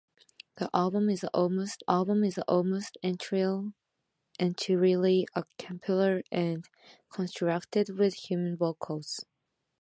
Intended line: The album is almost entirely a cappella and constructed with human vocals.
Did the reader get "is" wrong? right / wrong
right